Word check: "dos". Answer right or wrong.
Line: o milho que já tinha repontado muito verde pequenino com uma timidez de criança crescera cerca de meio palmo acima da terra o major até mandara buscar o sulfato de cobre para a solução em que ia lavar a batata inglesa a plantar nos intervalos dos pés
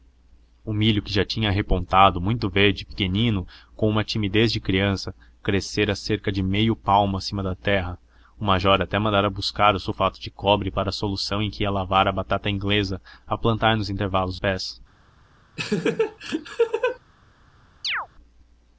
wrong